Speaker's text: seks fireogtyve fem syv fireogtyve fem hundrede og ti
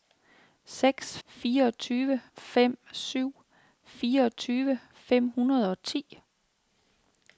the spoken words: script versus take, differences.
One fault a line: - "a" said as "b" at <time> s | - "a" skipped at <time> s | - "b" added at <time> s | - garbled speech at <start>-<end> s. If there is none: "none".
none